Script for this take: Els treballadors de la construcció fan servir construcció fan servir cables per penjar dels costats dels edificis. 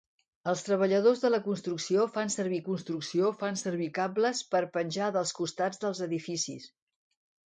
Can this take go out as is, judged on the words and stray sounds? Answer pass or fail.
pass